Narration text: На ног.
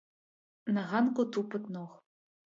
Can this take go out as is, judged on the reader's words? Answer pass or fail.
fail